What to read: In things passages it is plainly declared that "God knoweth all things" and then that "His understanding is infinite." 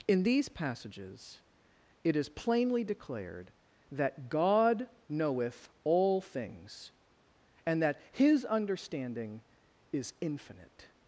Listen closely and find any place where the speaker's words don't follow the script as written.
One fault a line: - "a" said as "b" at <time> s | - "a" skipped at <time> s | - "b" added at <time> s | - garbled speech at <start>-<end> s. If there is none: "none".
- "things" said as "these" at 0.2 s
- "then" skipped at 7.8 s